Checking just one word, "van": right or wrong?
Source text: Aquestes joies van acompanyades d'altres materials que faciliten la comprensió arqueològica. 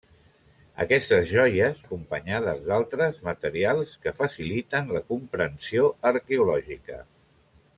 wrong